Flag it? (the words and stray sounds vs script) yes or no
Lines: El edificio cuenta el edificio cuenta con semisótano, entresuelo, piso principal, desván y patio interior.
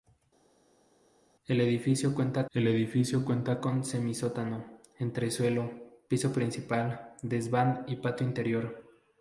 no